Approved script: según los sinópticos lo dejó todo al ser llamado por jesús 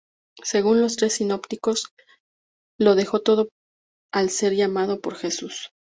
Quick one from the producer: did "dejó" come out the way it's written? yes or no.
yes